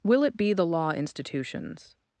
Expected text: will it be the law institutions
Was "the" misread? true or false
false